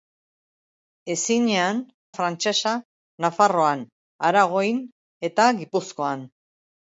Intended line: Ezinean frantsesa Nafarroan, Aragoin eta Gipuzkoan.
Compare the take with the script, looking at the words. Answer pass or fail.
pass